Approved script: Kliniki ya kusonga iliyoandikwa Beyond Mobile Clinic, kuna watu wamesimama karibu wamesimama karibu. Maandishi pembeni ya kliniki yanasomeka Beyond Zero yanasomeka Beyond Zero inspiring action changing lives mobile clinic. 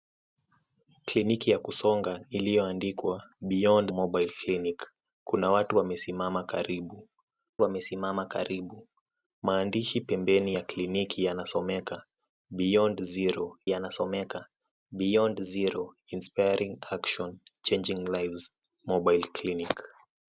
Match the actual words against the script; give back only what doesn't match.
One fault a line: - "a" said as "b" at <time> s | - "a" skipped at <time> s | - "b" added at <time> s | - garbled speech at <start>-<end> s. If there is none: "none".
none